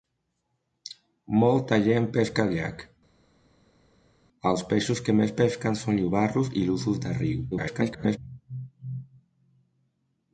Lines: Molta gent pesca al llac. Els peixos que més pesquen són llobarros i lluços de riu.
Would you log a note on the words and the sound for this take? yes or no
yes